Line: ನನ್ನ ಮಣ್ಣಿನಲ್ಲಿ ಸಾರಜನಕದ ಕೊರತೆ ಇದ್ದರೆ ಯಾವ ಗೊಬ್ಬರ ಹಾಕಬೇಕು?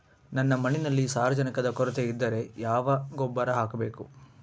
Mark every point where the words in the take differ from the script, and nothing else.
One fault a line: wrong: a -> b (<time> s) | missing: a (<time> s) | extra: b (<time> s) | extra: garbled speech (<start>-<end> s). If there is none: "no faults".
no faults